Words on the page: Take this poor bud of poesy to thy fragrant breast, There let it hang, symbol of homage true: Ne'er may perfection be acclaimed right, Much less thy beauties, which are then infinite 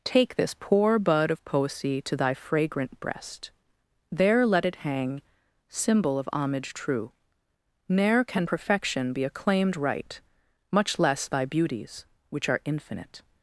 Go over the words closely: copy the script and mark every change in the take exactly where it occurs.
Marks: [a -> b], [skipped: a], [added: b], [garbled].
Take this poor bud of poesy to thy fragrant breast, There let it hang, symbol of homage true: Ne'er [may -> can] perfection be acclaimed right, Much less thy beauties, which are [skipped: then] infinite